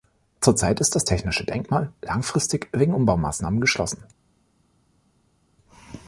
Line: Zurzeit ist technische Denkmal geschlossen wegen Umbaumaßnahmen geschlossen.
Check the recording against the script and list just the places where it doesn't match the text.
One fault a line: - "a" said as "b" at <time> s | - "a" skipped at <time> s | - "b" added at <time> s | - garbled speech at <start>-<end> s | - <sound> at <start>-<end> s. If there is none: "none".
- "das" added at 0.9 s
- "geschlossen" said as "langfristig" at 2.0 s